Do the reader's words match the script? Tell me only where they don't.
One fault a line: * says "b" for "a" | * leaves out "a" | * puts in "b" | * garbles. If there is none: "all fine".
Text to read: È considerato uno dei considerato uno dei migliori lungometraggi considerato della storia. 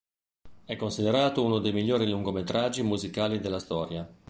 * leaves out "considerato uno dei"
* says "musicali" for "considerato"